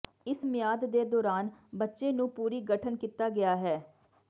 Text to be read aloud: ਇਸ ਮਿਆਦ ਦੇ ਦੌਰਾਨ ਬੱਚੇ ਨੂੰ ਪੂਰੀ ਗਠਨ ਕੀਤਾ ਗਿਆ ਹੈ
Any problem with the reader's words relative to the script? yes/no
no